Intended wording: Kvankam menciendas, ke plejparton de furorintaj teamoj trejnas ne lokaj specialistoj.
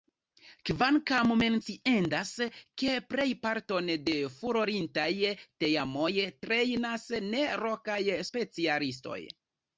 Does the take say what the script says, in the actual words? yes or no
yes